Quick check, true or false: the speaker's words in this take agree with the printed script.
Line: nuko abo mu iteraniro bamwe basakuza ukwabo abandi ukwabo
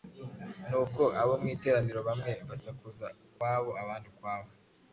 true